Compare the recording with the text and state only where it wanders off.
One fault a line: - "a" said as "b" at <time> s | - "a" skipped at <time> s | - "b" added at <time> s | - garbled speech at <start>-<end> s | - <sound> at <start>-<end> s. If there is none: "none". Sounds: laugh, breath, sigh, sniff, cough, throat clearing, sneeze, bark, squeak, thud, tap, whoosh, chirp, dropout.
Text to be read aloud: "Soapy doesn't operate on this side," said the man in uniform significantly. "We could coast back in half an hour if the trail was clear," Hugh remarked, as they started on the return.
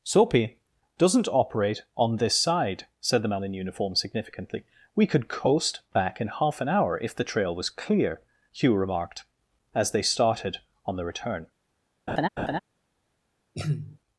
- laugh at 12.1-12.6 s
- throat clearing at 13.5-14.0 s